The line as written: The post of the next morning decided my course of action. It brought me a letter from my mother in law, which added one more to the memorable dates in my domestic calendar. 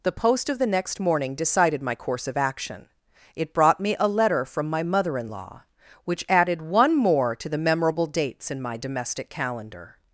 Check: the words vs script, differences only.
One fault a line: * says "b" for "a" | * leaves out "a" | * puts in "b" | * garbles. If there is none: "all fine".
all fine